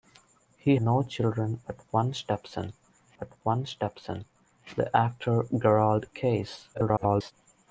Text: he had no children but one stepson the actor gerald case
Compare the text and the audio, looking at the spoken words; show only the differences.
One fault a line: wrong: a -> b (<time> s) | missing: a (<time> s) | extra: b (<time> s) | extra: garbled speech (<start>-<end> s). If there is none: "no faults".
missing: had (0.8 s)
extra: but one stepson (3.2 s)
extra: garbled speech (6.7-7.3 s)